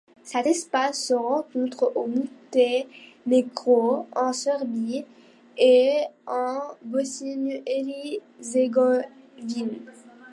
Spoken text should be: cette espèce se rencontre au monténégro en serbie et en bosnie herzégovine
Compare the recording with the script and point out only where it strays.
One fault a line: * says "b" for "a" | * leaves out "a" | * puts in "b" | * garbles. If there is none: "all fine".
all fine